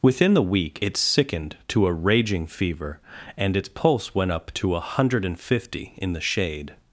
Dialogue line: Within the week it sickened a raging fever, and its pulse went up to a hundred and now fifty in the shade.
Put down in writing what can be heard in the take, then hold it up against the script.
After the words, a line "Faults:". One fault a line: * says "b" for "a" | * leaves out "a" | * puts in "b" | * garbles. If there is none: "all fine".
Within the week it sickened to a raging fever, and its pulse went up to a hundred and fifty in the shade.
Faults:
* puts in "to"
* leaves out "now"